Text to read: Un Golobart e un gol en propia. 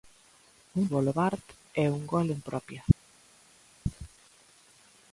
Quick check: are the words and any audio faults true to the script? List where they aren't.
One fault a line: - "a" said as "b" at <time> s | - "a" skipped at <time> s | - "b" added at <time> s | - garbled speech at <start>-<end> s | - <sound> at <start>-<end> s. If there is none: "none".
none